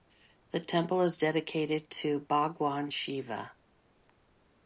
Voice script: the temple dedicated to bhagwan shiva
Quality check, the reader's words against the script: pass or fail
fail